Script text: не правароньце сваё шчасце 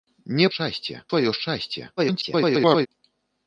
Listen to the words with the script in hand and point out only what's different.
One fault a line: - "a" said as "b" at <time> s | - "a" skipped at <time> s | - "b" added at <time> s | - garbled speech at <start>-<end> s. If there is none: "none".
- "правароньце" said as "шчасце" at 0.5 s
- garbled speech at 2.0-2.9 s